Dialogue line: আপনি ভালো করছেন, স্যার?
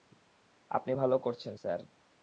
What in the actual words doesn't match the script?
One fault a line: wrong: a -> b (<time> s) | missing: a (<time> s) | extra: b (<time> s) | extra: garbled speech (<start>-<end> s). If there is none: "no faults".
no faults